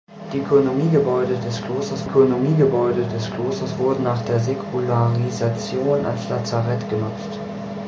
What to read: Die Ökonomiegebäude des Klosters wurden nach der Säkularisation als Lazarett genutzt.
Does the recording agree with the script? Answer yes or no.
no